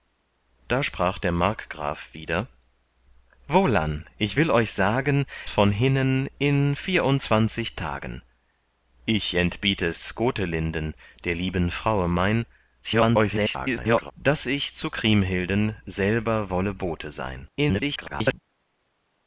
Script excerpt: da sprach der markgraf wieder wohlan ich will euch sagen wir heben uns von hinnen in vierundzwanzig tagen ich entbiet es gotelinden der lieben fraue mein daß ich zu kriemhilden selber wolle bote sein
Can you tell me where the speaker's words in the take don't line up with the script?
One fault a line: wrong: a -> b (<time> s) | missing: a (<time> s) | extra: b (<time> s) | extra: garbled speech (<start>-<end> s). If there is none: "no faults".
missing: wir heben uns (5.2 s)
extra: garbled speech (12.8-14.1 s)
extra: garbled speech (17.6-18.4 s)